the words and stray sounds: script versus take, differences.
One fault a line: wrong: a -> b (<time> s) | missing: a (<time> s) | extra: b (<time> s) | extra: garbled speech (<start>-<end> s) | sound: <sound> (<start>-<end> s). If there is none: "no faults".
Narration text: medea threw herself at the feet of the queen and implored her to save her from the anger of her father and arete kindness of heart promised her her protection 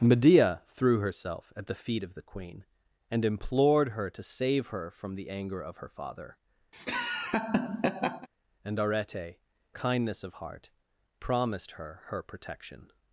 sound: laugh (6.7-8.3 s)